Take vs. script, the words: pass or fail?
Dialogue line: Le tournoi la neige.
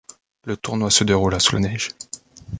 fail